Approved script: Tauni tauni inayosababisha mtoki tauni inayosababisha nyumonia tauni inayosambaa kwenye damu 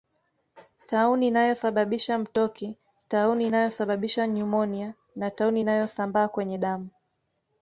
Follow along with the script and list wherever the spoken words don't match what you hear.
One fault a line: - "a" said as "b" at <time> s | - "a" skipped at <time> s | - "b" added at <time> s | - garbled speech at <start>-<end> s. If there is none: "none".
- "tauni" skipped at 1.3 s
- "na" added at 5.2 s